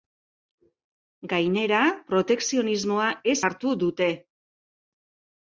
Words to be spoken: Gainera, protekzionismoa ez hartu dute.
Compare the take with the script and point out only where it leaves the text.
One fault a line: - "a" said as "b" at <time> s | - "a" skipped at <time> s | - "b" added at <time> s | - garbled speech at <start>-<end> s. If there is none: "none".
none